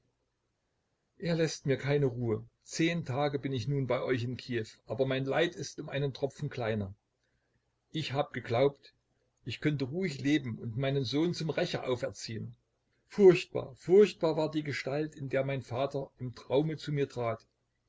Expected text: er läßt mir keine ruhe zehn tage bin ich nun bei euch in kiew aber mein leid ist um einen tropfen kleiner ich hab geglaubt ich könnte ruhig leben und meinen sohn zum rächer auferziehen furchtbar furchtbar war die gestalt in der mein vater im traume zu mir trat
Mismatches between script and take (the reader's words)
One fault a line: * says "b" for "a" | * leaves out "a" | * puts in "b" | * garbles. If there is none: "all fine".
all fine